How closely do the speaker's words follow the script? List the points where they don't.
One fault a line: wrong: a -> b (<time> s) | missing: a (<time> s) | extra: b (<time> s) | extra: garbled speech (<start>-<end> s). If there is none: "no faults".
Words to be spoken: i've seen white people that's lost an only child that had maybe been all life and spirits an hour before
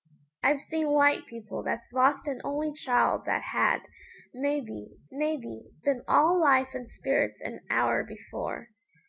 extra: maybe (5.1 s)